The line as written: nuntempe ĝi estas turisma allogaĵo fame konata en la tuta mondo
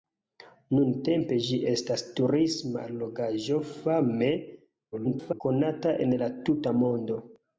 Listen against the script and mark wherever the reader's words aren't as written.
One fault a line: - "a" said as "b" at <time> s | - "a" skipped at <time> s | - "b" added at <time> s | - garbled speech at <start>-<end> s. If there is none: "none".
- garbled speech at 4.9-5.4 s